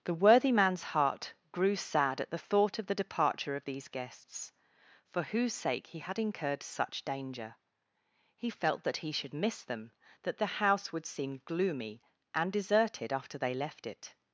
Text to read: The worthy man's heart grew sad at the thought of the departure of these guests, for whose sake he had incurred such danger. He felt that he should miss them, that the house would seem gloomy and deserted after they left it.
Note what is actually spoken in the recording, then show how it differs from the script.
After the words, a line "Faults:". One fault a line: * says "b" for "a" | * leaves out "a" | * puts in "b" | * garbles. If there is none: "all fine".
The worthy man's heart grew sad at the thought of the departure of these guests, for whose sake he had incurred such danger. He felt that he should miss them, that the house would seem gloomy and deserted after they left it.
Faults:
all fine